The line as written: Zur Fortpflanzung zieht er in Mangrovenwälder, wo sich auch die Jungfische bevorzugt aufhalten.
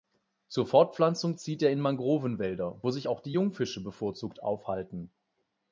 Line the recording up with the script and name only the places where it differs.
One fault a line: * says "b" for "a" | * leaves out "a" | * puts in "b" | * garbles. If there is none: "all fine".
all fine